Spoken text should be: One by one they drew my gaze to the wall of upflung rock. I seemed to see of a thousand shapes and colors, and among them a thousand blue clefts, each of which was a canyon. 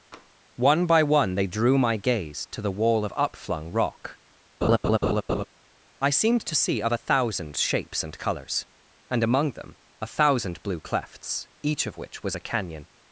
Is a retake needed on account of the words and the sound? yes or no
yes